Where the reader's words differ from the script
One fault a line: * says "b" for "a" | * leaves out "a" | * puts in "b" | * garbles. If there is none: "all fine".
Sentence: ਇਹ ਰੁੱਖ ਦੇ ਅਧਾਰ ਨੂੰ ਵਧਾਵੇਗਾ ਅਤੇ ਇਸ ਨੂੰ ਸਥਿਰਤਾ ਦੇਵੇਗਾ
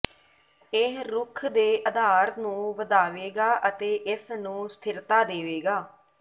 all fine